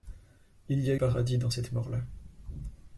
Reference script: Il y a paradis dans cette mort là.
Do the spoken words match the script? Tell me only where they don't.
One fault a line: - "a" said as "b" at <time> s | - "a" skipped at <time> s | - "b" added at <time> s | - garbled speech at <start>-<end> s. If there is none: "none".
none